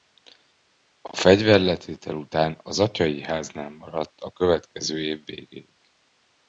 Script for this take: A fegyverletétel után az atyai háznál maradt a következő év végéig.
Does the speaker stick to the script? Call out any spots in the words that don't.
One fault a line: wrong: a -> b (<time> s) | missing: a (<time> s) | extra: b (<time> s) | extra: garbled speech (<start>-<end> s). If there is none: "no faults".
no faults